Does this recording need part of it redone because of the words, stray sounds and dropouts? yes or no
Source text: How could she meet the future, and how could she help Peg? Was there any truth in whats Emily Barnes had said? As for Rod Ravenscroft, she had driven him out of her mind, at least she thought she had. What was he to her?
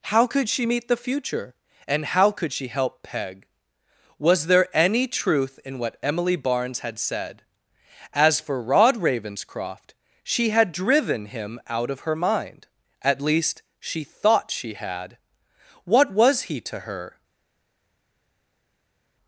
yes